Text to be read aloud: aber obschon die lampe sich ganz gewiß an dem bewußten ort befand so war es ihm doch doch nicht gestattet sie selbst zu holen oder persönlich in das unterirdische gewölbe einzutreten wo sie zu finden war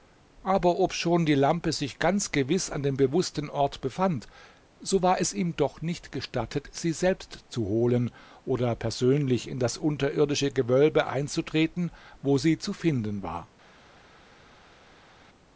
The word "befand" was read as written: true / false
true